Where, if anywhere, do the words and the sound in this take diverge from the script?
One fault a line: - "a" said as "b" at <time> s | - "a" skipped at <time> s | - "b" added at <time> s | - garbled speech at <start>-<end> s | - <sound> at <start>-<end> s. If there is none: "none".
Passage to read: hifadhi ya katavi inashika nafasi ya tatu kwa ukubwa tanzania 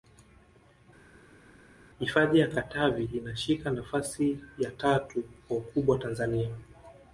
none